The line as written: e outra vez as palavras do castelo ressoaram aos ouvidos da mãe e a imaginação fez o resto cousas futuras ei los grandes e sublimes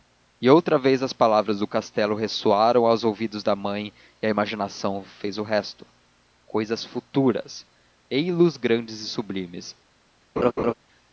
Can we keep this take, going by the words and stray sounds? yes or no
no